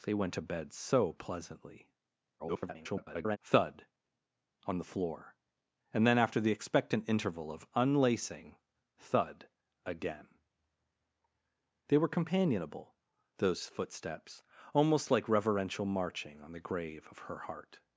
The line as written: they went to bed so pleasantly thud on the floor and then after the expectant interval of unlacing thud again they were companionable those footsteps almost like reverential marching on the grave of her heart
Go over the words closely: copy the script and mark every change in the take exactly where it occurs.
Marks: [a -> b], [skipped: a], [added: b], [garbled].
they went to bed so pleasantly [garbled] thud on the floor and then after the expectant interval of unlacing thud again they were companionable those footsteps almost like reverential marching on the grave of her heart